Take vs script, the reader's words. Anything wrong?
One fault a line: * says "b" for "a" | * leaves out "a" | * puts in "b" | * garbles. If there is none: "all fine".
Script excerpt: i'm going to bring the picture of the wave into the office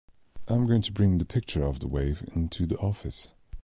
all fine